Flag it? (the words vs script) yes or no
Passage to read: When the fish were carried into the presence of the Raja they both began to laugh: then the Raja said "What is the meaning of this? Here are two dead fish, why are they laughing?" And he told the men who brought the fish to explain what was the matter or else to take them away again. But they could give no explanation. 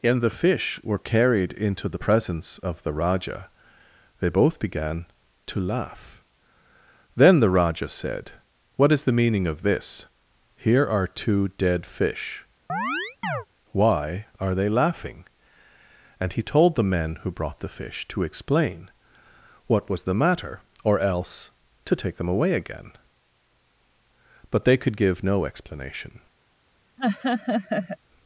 yes